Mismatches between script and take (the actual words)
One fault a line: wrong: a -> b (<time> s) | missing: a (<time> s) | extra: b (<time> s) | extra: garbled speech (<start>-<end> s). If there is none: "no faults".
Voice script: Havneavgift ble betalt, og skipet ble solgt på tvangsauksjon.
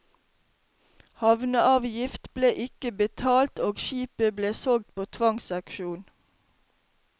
extra: ikke (2.6 s)